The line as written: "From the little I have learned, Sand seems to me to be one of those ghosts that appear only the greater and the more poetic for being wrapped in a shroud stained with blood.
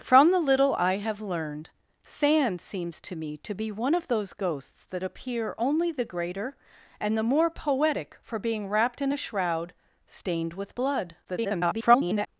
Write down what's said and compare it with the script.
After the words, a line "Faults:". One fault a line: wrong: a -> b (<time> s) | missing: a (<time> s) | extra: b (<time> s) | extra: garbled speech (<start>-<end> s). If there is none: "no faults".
"From the little I have learned, Sand seems to me to be one of those ghosts that appear only the greater and the more poetic for being wrapped in a shroud stained with blood. [garbled]
Faults:
extra: garbled speech (11.2-12.3 s)